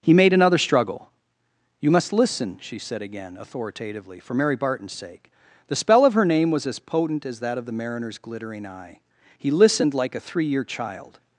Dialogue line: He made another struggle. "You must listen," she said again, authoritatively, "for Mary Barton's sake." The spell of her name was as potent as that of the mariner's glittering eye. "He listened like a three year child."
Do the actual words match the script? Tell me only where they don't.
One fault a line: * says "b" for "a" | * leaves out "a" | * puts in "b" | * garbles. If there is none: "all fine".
all fine